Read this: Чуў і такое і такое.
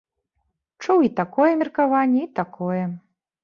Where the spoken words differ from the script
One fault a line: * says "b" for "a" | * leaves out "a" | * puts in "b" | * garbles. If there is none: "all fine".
* puts in "меркаванне"